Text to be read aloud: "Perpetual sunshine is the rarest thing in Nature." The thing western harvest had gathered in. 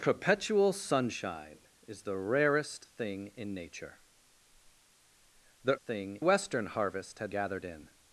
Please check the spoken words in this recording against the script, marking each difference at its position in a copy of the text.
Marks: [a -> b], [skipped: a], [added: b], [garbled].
"Perpetual sunshine is the rarest thing in Nature." The thing western harvest had gathered in.